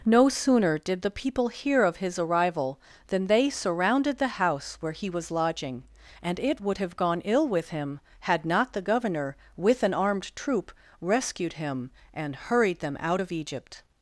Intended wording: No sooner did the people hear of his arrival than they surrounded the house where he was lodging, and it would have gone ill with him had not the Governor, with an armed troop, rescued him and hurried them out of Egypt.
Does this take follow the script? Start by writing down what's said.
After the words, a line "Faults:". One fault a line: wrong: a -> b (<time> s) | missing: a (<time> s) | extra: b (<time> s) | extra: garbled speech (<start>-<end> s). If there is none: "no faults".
No sooner did the people hear of his arrival than they surrounded the house where he was lodging, and it would have gone ill with him had not the Governor, with an armed troop, rescued him and hurried them out of Egypt.
Faults:
no faults